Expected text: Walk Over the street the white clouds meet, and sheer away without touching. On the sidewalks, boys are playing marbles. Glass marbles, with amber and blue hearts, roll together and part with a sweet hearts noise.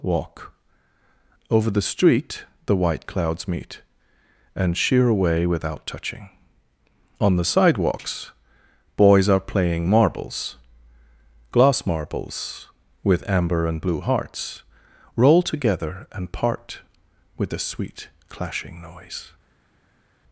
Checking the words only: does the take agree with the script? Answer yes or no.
no